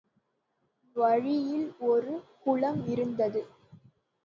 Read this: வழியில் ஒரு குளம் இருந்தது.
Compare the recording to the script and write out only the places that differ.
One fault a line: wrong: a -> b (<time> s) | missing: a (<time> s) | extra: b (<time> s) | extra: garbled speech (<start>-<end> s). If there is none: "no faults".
no faults